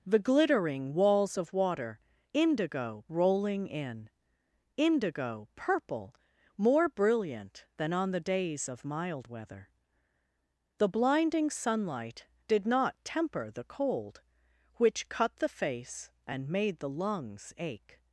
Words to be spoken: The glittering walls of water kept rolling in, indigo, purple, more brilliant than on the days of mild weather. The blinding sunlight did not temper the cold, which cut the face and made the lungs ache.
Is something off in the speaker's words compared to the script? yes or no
yes